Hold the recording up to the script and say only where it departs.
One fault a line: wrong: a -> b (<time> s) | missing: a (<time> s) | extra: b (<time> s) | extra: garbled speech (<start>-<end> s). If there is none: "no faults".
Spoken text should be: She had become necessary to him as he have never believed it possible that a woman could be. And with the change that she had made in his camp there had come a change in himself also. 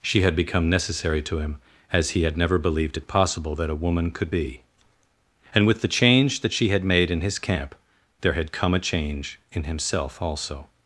wrong: have -> had (2.2 s)